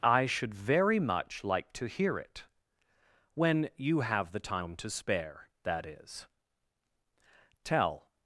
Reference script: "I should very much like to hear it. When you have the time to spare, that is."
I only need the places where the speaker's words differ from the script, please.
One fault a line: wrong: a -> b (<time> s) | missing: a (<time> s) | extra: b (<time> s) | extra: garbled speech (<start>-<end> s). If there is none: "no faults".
extra: Tell (7.6 s)